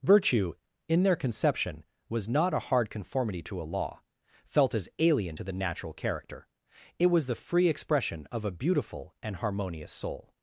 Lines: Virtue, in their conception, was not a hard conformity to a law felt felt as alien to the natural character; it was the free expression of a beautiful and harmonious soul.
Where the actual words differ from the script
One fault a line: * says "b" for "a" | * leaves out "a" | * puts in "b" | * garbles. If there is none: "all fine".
* leaves out "felt"